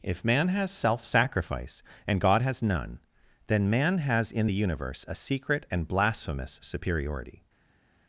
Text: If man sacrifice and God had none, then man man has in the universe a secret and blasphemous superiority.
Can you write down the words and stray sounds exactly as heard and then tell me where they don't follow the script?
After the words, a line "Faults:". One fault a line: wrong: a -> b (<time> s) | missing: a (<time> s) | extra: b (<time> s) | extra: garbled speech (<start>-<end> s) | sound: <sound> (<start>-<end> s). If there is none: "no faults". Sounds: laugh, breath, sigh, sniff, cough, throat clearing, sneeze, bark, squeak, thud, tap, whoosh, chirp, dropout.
If man has self sacrifice and God has none, then man has in the universe a secret and blasphemous superiority.
Faults:
extra: has self (0.5 s)
wrong: had -> has (2.4 s)
missing: man (4.0 s)